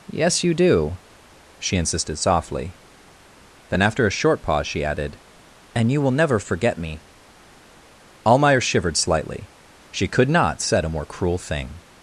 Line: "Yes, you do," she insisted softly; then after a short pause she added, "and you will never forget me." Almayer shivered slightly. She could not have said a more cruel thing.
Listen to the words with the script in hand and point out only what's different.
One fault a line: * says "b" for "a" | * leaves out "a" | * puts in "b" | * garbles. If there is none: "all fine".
* leaves out "have"